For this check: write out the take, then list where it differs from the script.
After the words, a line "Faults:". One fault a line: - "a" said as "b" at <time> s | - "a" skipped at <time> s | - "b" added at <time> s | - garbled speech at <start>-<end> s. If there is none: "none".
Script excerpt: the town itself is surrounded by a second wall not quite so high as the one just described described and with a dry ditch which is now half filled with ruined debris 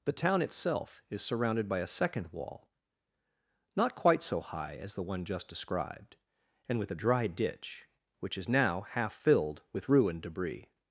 the town itself is surrounded by a second wall not quite so high as the one just described and with a dry ditch which is now half filled with ruined debris
Faults:
- "described" skipped at 6.2 s